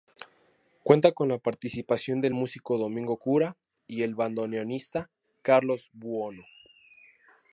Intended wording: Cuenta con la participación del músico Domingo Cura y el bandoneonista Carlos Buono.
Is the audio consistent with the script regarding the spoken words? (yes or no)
yes